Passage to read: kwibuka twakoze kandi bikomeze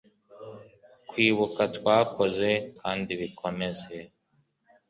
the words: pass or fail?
pass